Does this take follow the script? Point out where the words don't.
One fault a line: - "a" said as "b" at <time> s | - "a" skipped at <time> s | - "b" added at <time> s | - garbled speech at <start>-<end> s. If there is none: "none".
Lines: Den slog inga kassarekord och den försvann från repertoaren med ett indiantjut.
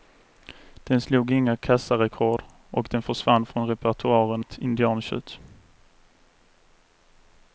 - "med" skipped at 4.5 s